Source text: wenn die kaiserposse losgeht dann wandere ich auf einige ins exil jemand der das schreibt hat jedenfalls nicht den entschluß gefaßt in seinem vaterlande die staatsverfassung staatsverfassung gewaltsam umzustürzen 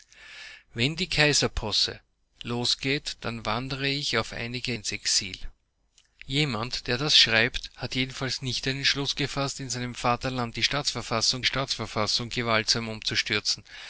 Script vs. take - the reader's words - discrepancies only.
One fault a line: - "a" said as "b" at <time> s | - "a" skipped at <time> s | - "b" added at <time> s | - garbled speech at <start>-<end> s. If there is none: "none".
none